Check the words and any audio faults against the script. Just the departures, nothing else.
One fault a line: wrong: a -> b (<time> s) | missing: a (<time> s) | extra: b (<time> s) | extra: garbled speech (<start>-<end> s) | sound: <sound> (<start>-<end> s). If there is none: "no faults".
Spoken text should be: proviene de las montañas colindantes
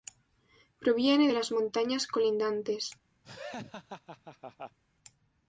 sound: laugh (3.2-4.8 s)